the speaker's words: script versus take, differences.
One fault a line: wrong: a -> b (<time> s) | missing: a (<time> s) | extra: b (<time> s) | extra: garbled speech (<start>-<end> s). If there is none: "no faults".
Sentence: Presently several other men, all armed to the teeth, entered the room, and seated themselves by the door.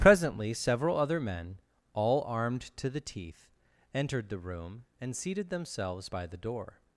no faults